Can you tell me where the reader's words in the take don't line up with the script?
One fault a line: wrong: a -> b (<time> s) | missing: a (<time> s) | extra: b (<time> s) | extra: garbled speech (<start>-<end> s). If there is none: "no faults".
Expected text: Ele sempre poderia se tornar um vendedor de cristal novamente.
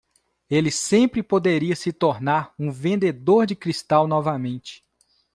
no faults